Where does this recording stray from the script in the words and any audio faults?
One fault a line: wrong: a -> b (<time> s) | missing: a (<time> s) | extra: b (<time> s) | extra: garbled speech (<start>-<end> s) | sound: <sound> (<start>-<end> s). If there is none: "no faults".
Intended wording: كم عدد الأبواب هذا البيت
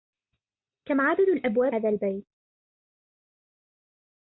no faults